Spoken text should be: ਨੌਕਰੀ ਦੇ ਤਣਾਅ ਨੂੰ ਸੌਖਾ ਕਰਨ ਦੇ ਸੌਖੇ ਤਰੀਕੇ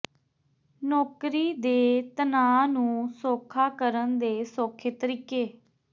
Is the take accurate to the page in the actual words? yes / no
yes